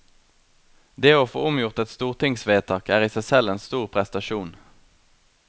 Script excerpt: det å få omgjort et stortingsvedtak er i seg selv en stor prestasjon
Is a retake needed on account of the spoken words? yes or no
no